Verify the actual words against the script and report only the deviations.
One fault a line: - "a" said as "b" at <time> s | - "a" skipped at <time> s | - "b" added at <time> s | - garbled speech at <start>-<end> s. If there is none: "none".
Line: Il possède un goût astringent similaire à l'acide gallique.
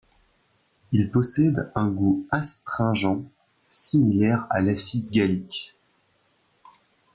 none